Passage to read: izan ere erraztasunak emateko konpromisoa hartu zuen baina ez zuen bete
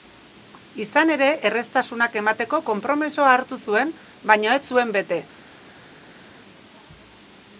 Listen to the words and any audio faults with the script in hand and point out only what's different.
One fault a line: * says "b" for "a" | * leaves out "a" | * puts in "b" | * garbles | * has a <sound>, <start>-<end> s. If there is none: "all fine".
all fine